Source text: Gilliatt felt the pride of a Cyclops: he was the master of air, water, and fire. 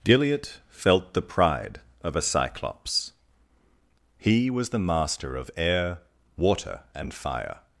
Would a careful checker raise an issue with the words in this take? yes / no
no